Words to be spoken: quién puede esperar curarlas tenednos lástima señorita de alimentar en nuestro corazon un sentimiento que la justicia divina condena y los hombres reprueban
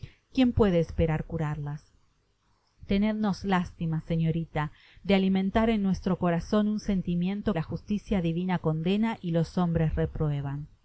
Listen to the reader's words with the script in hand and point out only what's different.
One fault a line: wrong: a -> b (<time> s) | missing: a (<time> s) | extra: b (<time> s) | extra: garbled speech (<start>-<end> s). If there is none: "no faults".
missing: que (7.5 s)